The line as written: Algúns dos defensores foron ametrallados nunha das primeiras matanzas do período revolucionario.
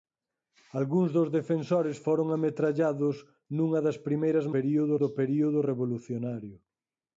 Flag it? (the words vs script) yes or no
yes